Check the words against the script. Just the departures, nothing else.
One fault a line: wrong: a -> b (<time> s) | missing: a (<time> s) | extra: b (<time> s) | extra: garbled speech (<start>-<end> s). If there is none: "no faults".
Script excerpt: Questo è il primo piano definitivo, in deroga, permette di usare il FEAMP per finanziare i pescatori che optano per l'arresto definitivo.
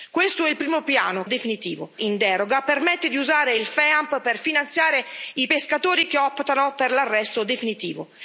no faults